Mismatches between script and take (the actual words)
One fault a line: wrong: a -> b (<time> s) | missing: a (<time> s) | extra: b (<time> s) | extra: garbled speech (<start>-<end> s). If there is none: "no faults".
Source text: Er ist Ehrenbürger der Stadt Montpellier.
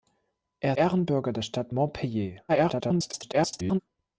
missing: ist (0.7 s)
extra: garbled speech (2.5-3.8 s)